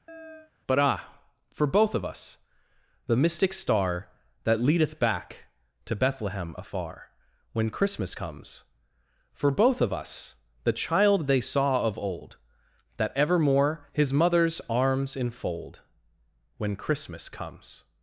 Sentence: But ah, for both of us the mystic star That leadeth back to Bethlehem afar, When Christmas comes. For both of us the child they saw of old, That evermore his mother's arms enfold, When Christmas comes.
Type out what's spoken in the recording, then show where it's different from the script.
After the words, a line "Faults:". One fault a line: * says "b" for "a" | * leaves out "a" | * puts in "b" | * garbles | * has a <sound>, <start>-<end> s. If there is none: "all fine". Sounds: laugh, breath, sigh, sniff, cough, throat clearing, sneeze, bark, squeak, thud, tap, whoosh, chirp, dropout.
But ah, for both of us the mystic star That leadeth back to Bethlehem afar, When Christmas comes. For both of us the child they saw of old, That evermore his mother's arms enfold, When Christmas comes.
Faults:
* has a chirp, 0.1-0.5 s